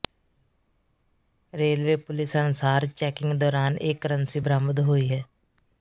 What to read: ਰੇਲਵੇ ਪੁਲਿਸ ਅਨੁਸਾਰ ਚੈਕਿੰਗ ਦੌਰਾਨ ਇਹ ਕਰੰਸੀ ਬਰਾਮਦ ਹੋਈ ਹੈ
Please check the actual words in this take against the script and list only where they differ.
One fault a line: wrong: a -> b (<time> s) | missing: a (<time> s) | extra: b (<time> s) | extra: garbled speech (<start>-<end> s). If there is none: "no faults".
no faults